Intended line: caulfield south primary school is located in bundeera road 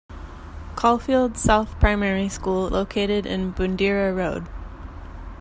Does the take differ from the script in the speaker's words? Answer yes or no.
yes